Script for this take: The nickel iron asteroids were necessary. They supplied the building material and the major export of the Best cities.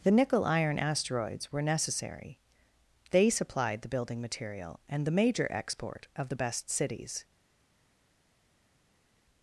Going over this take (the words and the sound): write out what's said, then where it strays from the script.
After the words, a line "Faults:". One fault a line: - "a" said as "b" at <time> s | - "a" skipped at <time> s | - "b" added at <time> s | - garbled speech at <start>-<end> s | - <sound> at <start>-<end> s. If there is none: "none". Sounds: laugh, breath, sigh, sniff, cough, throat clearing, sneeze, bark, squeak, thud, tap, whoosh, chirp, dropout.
The nickel iron asteroids were necessary. They supplied the building material and the major export of the Best cities.
Faults:
none